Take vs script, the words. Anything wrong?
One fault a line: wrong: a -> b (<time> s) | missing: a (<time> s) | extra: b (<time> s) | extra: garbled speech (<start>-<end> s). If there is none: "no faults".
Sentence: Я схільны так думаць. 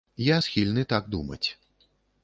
no faults